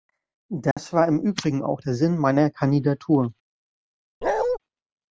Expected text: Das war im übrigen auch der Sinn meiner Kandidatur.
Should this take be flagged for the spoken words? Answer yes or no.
no